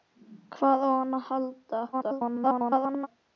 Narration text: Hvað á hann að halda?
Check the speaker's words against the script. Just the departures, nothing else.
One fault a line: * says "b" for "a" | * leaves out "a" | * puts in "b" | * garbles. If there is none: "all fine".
* garbles